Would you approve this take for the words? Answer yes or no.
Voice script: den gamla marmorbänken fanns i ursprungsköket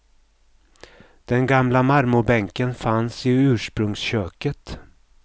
yes